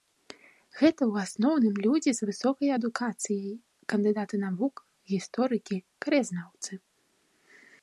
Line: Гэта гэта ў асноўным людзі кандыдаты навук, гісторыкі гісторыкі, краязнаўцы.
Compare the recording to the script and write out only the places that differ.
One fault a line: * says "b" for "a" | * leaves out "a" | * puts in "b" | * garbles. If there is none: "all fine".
* leaves out "гэта"
* puts in "з высокай адукацыяй"
* leaves out "гісторыкі"